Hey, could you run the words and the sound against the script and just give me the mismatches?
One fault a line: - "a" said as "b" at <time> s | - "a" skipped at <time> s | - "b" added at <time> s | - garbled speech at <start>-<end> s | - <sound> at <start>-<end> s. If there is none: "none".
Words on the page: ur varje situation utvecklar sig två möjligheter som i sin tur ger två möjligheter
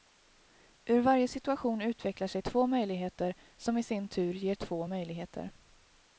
none